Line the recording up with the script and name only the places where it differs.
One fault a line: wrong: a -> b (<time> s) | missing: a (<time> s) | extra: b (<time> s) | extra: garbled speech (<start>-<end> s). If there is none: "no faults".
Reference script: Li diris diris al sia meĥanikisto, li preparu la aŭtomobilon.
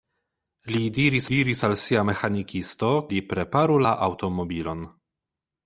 no faults